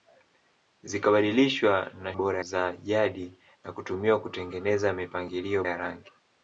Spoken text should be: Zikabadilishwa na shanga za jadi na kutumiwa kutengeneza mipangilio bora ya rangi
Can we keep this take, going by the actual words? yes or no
no